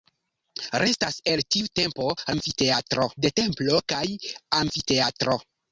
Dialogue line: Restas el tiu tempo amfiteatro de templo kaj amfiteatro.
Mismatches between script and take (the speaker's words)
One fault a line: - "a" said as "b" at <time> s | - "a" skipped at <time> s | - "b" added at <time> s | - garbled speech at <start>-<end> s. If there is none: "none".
none